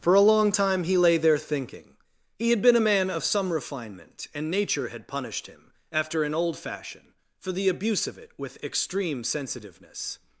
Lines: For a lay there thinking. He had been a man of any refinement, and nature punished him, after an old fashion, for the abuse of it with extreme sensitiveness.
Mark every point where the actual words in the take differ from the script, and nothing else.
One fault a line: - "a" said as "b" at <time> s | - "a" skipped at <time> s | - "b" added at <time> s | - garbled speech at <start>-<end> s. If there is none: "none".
- "long time he" added at 0.2 s
- "any" said as "some" at 3.2 s
- "had" added at 4.9 s